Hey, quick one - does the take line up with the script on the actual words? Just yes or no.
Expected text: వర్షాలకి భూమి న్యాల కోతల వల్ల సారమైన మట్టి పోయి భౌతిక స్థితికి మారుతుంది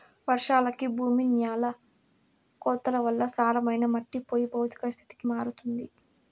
yes